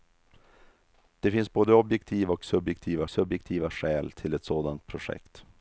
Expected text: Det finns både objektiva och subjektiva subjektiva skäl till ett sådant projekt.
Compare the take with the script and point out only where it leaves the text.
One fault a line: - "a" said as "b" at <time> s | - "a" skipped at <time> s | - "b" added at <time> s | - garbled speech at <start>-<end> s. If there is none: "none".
none